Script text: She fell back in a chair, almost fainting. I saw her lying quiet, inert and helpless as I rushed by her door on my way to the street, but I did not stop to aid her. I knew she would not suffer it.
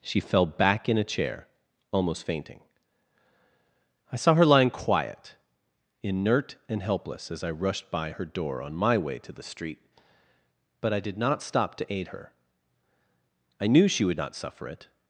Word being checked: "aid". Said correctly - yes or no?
yes